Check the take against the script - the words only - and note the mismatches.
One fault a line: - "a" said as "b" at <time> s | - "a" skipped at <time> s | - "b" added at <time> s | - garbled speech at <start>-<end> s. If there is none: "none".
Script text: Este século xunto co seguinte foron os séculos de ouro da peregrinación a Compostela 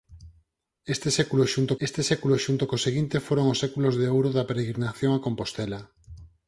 - "este século xunto" added at 1.9 s